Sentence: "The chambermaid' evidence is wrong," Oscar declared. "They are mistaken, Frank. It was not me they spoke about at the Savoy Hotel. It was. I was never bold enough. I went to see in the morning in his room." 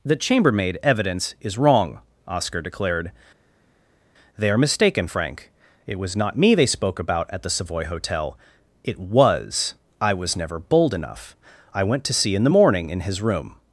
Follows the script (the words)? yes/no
yes